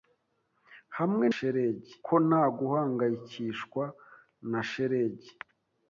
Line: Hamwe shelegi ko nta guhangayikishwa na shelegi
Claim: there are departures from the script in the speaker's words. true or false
false